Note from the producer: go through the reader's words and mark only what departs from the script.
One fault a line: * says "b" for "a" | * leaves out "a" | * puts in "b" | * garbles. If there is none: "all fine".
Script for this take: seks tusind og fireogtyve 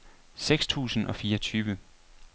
all fine